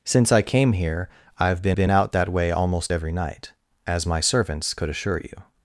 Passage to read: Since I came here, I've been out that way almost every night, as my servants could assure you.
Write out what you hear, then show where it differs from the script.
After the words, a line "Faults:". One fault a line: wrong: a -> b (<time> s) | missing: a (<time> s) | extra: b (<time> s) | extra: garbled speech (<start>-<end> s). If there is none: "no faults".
Since I came here, I've been been out that way almost every night, as my servants could assure you.
Faults:
extra: been (1.7 s)